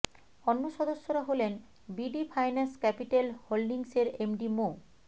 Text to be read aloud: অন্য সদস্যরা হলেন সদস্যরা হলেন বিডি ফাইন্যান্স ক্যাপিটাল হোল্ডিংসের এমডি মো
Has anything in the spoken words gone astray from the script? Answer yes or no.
yes